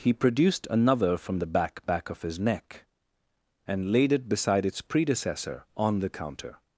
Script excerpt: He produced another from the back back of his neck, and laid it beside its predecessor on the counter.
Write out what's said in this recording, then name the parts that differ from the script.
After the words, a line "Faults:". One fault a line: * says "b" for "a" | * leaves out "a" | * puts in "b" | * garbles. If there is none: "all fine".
He produced another from the back back of his neck, and laid it beside its predecessor on the counter.
Faults:
all fine